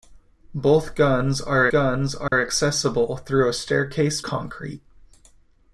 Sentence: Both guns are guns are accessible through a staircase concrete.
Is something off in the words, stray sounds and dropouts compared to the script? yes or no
yes